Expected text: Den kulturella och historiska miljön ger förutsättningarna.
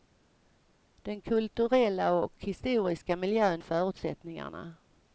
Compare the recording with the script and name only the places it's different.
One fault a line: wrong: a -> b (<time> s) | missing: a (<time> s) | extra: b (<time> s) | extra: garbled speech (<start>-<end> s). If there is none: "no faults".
missing: ger (3.6 s)